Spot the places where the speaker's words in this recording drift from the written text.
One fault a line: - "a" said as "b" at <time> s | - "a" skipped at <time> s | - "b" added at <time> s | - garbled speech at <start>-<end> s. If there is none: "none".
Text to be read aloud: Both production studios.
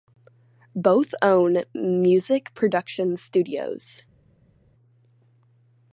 - "own music" added at 1.2 s